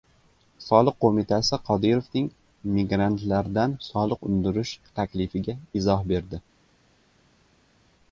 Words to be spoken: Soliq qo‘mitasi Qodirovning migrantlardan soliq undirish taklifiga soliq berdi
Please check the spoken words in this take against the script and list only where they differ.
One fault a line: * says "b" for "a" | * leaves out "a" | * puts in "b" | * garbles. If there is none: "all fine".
* says "izoh" for "soliq"